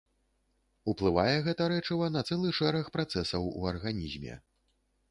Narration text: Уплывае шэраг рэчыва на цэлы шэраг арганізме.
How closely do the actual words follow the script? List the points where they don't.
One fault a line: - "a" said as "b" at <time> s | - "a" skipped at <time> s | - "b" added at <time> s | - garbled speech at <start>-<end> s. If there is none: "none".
- "шэраг" said as "гэта" at 1.5 s
- "працэсаў у" added at 3.0 s